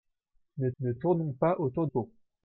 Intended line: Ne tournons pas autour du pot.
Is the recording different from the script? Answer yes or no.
yes